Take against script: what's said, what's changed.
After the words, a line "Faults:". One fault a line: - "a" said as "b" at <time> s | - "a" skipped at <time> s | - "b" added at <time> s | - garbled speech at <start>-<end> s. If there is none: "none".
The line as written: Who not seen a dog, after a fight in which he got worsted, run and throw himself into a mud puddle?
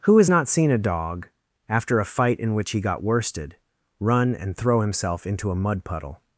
Who has not seen a dog, after a fight in which he got worsted, run and throw himself into a mud puddle?
Faults:
- "has" added at 0.2 s